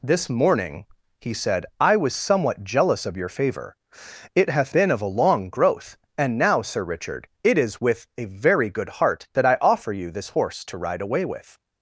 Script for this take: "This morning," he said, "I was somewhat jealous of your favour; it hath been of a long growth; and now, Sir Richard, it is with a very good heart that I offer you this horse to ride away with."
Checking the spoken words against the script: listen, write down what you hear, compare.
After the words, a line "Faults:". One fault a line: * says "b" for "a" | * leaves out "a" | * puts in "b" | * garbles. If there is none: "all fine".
"This morning," he said, "I was somewhat jealous of your favour; it hath been of a long growth; and now, Sir Richard, it is with a very good heart that I offer you this horse to ride away with."
Faults:
all fine